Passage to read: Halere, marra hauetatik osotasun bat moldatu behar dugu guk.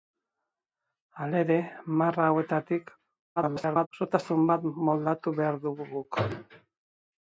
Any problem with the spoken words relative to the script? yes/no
yes